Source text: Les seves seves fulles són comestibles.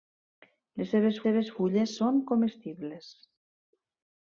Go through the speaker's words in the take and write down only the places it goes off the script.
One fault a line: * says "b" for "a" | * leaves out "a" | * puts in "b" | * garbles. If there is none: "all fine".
all fine